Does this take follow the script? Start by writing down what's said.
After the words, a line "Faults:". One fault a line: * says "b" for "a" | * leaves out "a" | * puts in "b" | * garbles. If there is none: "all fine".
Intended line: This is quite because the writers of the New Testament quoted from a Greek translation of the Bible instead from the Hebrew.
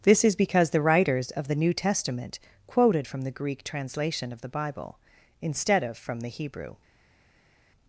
This is because the writers of the New Testament quoted from the Greek translation of the Bible instead of from the Hebrew.
Faults:
* leaves out "quite"
* says "the" for "a"
* puts in "of"